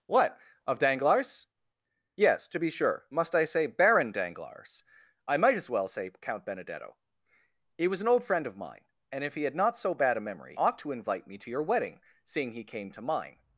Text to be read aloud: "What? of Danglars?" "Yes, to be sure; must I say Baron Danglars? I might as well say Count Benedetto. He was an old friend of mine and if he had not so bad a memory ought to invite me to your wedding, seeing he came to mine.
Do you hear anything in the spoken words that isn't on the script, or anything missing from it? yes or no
no